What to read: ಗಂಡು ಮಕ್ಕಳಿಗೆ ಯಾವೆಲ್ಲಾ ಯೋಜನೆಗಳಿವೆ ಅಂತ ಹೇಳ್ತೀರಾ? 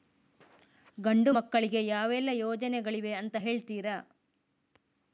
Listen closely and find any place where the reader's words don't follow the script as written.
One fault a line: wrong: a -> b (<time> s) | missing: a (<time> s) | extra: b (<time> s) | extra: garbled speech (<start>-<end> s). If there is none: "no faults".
no faults